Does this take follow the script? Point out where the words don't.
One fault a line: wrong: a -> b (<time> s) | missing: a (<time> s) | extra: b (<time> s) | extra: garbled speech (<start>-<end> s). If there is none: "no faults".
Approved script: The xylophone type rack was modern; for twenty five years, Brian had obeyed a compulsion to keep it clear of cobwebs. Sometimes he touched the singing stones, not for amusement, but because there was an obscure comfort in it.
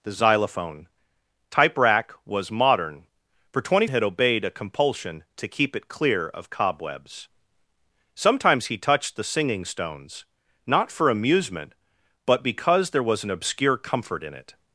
missing: five years Brian (3.9 s)